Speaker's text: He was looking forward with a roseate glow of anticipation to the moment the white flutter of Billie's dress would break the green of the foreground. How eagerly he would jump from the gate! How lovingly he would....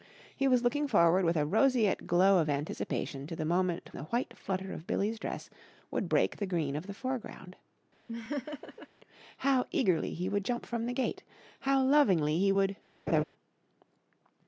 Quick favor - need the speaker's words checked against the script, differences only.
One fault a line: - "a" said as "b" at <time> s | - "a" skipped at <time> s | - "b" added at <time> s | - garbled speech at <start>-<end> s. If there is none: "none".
none